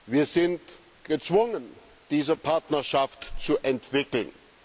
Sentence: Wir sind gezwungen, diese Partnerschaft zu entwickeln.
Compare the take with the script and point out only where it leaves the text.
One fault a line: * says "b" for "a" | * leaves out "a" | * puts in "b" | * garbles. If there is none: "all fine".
all fine